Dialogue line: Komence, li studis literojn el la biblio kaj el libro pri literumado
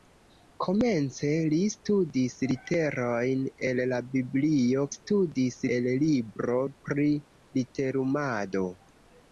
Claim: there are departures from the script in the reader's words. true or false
true